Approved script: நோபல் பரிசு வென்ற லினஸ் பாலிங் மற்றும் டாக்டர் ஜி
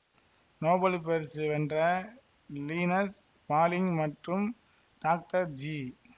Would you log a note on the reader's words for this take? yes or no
no